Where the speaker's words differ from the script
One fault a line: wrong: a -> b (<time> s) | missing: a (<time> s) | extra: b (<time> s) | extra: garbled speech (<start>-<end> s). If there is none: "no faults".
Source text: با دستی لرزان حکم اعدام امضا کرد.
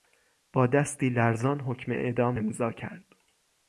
no faults